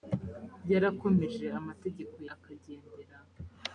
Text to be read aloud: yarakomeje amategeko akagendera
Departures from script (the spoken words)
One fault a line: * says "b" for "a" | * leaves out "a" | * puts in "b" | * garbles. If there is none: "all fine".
all fine